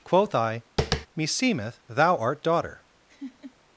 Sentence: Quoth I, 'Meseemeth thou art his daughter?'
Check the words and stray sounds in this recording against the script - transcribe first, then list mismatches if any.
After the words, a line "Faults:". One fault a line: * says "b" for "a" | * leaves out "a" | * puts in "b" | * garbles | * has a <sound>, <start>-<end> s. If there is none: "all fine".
Quoth I, 'Meseemeth thou art daughter?'
Faults:
* has a tap, 0.8-1.1 s
* leaves out "his"
* has a laugh, 3.1-3.5 s